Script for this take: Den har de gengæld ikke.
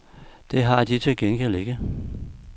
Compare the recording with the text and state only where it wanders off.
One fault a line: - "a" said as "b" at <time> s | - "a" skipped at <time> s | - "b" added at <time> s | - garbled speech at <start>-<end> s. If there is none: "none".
- "Den" said as "Det" at 0.5 s
- "til" added at 1.0 s